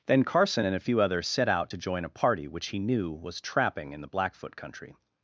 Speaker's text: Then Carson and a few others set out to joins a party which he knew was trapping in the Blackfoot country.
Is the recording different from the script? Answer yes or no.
yes